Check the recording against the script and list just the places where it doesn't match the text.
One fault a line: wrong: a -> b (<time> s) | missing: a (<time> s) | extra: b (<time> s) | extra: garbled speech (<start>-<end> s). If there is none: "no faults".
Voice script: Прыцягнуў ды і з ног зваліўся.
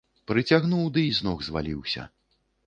no faults